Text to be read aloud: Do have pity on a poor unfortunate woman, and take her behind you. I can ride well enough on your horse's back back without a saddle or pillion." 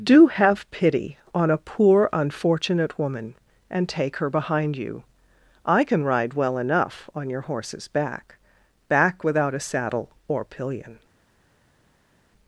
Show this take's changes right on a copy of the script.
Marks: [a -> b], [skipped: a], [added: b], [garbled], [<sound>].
Do have pity on a poor unfortunate woman, and take her behind you. I can ride well enough on your horse's back back without a saddle or pillion."